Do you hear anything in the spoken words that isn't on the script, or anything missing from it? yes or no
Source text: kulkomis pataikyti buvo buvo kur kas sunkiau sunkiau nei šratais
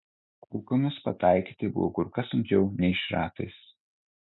yes